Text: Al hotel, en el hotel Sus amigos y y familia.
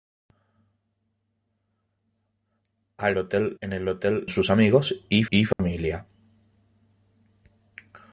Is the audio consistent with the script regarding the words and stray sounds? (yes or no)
no